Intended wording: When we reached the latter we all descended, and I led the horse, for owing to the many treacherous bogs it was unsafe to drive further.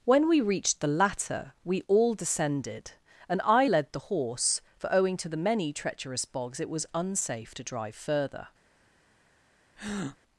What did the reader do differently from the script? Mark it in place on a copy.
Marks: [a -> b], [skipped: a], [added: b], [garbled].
When we reached the latter we all descended, and I led the horse, for owing to the many treacherous bogs it was unsafe to drive further.